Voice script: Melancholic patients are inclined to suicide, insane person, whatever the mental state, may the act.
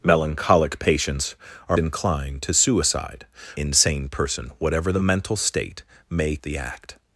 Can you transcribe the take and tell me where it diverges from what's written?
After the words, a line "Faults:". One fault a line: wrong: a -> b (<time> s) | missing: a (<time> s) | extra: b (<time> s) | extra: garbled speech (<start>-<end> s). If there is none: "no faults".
Melancholic patients are inclined to suicide, insane person, whatever the mental state, may the act.
Faults:
no faults